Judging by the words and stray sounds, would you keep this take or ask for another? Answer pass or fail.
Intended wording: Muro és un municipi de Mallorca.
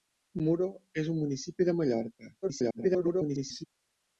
fail